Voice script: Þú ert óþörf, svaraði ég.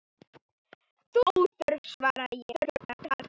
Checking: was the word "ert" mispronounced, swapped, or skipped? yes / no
yes